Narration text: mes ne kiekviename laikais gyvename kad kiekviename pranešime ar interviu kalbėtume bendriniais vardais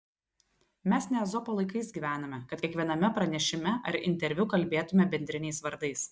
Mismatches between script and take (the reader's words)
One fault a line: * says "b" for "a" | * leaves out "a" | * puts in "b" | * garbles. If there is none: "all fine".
* says "ezopo" for "kiekviename"